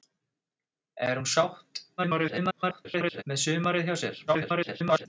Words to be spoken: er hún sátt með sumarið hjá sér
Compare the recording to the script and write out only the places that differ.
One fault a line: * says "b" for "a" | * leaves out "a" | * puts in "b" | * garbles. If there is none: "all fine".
* garbles
* garbles